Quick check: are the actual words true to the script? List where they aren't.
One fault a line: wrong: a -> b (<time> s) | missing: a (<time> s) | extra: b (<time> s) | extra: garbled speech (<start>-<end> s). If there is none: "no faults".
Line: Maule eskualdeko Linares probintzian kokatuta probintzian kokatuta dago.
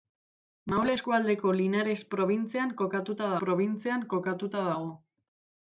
no faults